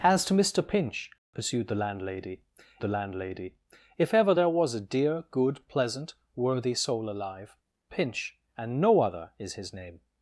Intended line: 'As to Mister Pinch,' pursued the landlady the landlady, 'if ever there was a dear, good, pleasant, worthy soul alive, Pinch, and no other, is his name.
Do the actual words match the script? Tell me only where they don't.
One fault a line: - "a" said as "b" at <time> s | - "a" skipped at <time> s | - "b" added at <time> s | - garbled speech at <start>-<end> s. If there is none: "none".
none